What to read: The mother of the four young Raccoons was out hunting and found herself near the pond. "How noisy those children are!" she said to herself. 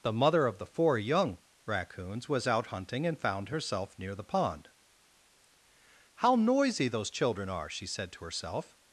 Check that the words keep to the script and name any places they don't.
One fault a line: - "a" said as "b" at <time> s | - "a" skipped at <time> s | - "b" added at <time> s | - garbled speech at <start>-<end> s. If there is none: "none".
none